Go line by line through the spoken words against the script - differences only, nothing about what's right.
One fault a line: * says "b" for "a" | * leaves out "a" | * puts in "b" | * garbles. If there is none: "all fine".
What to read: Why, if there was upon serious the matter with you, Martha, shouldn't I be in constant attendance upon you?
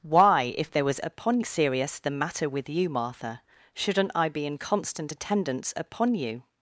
all fine